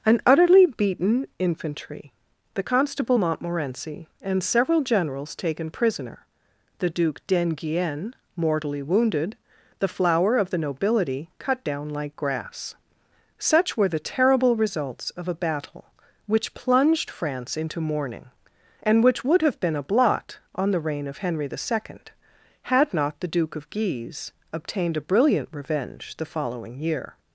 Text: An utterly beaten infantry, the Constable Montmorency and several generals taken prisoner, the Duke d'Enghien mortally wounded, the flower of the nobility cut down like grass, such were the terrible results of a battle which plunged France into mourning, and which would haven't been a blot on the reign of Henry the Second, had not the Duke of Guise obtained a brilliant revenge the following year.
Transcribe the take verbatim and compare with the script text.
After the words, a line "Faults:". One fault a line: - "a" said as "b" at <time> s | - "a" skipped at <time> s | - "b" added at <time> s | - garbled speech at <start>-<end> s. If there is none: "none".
An utterly beaten infantry, the Constable Montmorency and several generals taken prisoner, the Duke d'Enghien mortally wounded, the flower of the nobility cut down like grass, such were the terrible results of a battle which plunged France into mourning, and which would have been a blot on the reign of Henry the Second, had not the Duke of Guise obtained a brilliant revenge the following year.
Faults:
- "haven't" said as "have" at 19.4 s